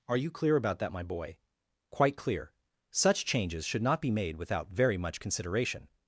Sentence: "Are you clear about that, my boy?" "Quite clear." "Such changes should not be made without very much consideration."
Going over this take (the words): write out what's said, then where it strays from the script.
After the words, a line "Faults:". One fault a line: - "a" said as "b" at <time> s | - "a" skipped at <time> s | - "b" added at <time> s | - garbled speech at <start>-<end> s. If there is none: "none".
"Are you clear about that, my boy?" "Quite clear." "Such changes should not be made without very much consideration."
Faults:
none